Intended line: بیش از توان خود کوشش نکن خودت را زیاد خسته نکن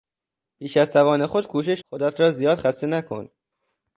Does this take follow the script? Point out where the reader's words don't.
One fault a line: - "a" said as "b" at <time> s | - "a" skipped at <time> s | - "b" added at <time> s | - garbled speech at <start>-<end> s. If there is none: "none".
- "نکن" skipped at 1.8 s